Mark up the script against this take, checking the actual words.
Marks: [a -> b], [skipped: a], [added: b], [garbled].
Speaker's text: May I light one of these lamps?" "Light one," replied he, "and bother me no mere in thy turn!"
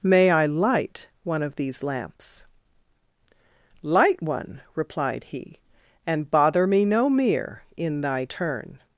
May I light one of these lamps?" "Light one," replied he, "and bother me no mere in thy turn!"